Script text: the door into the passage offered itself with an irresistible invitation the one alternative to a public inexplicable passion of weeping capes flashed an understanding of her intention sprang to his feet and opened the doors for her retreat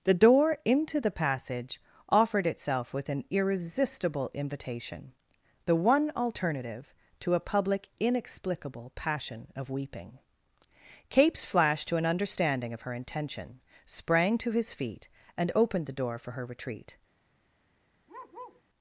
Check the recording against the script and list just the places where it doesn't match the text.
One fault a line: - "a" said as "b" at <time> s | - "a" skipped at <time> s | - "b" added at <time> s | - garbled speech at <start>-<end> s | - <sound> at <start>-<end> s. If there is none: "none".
- "to" added at 11.9 s
- "doors" said as "door" at 15.9 s
- bark at 18.1-18.6 s